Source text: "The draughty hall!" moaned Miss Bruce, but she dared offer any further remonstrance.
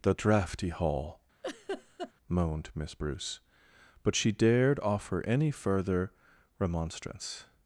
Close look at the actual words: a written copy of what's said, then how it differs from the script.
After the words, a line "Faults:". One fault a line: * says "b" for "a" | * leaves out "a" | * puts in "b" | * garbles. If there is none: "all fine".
"The draughty hall!" moaned Miss Bruce, but she dared offer any further remonstrance.
Faults:
all fine